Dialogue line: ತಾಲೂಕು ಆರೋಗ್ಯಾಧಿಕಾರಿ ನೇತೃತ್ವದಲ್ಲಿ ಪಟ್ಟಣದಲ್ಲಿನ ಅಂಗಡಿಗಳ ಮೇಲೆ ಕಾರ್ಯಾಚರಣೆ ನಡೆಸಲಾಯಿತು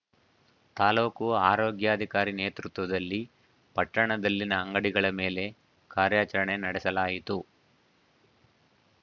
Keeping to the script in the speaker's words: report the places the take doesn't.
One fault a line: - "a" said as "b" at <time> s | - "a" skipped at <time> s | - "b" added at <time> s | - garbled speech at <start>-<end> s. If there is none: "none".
none